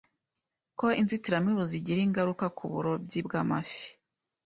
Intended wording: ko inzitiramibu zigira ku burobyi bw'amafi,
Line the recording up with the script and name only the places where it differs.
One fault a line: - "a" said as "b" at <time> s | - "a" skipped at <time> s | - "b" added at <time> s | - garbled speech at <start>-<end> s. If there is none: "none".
- "ingaruka" added at 2.1 s